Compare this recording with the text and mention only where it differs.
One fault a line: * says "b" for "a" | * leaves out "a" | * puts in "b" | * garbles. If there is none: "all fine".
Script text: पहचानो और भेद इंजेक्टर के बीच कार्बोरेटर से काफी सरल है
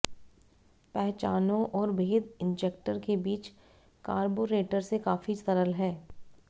all fine